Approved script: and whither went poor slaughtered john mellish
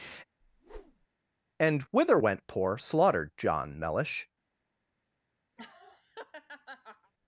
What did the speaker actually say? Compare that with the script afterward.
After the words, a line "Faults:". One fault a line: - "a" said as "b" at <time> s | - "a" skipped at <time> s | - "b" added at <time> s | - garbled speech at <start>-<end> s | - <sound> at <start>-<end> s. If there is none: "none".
and whither went poor slaughtered john mellish
Faults:
- whoosh at 0.4-1.1 s
- laugh at 5.6-7.1 s